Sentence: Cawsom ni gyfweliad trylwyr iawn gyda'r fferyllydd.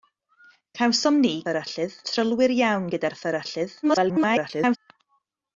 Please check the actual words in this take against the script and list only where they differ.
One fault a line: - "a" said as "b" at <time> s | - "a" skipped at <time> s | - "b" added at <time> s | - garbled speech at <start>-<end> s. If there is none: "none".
- "gyfweliad" said as "fferyllydd" at 1.4 s
- garbled speech at 3.8-4.8 s